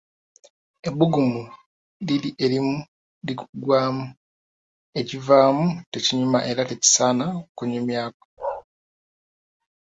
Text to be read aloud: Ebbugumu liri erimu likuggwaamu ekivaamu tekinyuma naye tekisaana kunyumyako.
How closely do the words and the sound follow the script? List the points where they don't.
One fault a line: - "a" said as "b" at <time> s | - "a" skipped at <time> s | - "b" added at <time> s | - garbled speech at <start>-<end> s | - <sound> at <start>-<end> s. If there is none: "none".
- "naye" said as "era" at 6.5 s
- bark at 8.4-8.6 s